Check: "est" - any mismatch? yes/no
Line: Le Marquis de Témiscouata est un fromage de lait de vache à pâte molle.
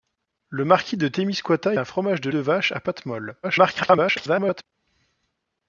yes